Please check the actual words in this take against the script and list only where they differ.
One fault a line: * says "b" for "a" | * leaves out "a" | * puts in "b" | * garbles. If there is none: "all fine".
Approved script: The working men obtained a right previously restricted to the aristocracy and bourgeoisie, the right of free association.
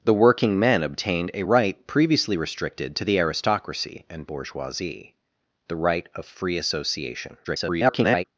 * garbles